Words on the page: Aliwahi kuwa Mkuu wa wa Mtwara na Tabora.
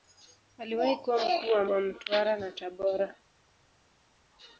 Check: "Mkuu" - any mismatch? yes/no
no